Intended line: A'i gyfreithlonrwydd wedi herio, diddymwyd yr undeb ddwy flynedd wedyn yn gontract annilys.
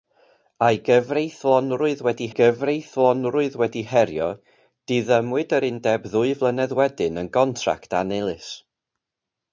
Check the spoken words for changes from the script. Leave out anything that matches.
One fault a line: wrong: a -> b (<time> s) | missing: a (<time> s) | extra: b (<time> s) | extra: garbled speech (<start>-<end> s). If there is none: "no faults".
extra: gyfreithlonrwydd wedi (2.4 s)